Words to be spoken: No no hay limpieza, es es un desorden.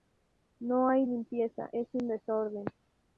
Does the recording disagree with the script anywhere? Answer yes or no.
yes